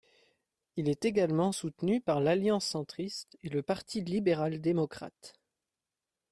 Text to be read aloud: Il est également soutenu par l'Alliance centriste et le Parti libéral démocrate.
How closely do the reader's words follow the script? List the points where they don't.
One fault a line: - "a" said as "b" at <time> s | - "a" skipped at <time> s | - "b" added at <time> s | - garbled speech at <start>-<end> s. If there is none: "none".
none